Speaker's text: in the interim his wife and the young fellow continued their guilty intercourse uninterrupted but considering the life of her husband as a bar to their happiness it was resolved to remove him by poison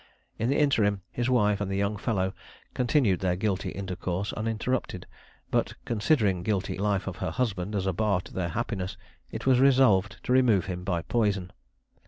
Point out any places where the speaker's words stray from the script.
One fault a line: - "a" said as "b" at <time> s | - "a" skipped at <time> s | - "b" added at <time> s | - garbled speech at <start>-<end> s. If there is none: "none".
- "the" said as "guilty" at 6.4 s